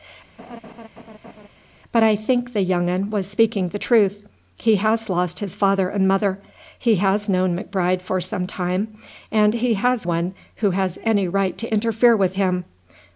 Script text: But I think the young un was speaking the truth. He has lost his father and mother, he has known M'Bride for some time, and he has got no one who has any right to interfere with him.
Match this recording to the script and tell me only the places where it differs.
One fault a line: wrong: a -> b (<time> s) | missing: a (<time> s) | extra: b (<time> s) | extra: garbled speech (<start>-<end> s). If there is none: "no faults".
missing: got no (10.0 s)